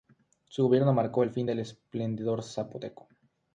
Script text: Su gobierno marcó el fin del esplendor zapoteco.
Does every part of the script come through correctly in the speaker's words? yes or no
yes